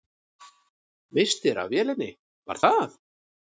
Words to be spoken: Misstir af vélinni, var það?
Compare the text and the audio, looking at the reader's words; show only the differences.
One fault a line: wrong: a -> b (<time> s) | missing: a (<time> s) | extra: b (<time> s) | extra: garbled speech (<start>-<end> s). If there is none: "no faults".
no faults